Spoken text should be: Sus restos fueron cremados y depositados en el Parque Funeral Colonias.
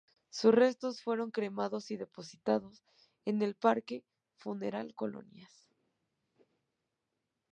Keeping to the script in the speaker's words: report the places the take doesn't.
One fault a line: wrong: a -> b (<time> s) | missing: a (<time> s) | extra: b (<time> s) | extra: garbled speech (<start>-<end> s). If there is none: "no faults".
no faults